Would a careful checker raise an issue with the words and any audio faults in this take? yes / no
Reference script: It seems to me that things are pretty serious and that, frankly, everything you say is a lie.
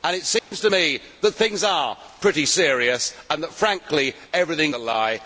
yes